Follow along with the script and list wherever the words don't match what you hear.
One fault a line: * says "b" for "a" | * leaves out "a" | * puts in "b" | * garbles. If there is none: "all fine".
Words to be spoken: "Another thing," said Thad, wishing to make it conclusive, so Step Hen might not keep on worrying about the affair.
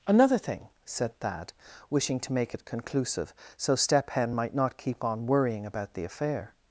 all fine